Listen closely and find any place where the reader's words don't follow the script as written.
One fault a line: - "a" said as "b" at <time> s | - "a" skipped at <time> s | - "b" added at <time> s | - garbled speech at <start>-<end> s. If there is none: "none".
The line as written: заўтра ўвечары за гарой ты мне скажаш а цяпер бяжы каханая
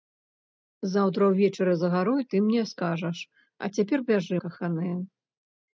none